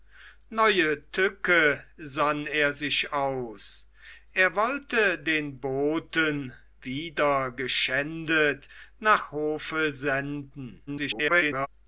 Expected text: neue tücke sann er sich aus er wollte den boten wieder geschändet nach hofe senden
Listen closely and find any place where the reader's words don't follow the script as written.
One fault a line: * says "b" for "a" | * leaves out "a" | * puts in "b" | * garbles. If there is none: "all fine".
* garbles